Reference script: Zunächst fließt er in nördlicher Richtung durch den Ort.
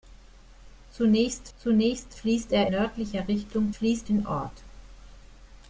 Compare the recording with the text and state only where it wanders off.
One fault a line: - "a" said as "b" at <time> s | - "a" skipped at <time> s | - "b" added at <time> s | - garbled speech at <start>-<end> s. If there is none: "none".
- "zunächst" added at 1.6 s
- "in" skipped at 2.7 s
- "durch" said as "fließt" at 3.7 s